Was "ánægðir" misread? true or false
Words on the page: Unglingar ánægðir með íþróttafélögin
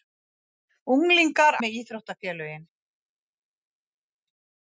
true